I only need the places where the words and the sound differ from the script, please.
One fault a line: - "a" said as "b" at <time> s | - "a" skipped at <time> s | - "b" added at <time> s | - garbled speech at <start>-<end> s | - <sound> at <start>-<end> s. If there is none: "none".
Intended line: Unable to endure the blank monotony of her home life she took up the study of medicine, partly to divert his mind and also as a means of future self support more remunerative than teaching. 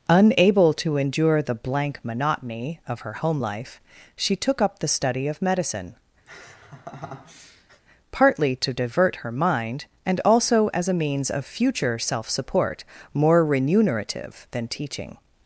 - laugh at 6.3-7.8 s
- "his" said as "her" at 9.2 s